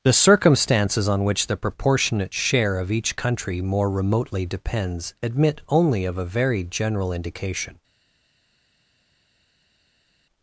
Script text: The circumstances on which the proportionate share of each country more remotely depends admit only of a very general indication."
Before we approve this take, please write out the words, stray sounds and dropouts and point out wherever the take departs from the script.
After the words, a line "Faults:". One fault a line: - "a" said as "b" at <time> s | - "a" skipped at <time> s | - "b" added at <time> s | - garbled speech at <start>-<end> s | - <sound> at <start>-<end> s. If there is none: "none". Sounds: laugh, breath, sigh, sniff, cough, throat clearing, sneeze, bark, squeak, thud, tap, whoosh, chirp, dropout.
The circumstances on which the proportionate share of each country more remotely depends admit only of a very general indication."
Faults:
none